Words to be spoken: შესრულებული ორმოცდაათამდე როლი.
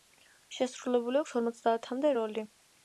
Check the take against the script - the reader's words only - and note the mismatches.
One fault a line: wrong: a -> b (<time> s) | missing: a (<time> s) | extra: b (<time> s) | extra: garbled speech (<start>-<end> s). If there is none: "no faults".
extra: აქვს (1.2 s)